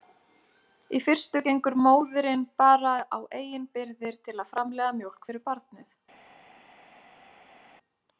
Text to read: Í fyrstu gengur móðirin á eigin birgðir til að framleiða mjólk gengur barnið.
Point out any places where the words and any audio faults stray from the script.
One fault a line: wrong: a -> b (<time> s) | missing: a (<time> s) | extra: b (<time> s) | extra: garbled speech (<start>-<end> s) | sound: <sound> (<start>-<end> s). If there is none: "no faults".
extra: bara (2.6 s)
wrong: gengur -> fyrir (5.3 s)